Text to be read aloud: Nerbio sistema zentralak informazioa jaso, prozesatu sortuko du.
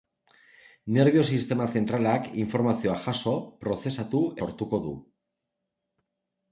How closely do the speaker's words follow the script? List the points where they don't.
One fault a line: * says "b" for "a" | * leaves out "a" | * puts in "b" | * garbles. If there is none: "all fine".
all fine